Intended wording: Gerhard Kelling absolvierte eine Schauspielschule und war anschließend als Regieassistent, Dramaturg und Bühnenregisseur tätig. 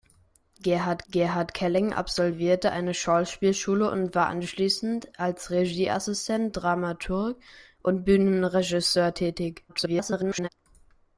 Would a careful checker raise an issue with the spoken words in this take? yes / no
yes